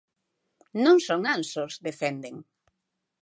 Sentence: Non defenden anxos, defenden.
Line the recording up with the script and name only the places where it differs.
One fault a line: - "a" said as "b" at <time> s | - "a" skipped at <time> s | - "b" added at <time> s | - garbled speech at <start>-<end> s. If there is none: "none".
- "defenden" said as "son" at 1.1 s